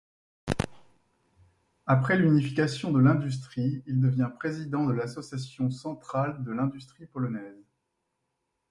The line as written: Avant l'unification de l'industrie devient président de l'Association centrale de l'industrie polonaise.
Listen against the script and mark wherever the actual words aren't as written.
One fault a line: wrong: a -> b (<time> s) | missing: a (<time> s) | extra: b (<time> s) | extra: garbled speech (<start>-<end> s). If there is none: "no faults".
wrong: Avant -> Après (1.9 s)
extra: il (3.9 s)